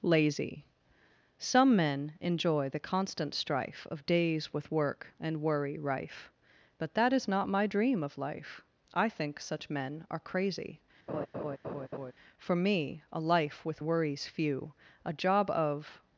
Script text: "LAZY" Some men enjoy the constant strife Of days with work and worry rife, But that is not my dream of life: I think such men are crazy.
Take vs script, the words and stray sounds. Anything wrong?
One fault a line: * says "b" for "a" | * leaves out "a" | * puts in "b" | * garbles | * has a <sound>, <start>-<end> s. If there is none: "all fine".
* has a laugh, 11.1-12.1 s
* puts in "For me a life with worries few A job of"